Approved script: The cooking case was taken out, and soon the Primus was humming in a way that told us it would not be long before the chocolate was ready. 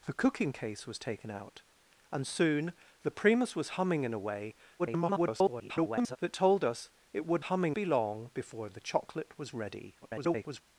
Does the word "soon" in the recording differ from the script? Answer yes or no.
no